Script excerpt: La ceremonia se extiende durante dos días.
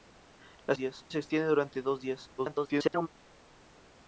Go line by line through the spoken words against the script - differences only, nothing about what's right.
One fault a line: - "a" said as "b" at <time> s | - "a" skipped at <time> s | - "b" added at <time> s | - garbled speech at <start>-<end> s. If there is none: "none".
- "ceremonia" said as "días" at 0.7 s
- garbled speech at 2.4-3.1 s